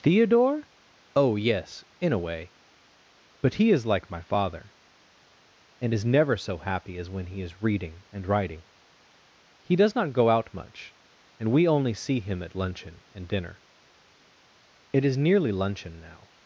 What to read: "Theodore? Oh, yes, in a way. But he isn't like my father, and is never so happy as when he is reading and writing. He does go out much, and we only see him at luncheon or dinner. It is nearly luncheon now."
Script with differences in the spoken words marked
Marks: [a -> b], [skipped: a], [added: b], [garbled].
"Theodore? Oh, yes, in a way. But he [isn't -> is] like my father, and is never so happy as when he is reading and writing. He does [added: not] go out much, and we only see him at luncheon [or -> and] dinner. It is nearly luncheon now."